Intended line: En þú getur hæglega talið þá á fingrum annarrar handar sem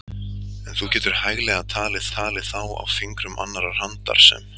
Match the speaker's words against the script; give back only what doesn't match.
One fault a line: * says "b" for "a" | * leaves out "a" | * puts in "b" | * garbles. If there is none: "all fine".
* puts in "talið"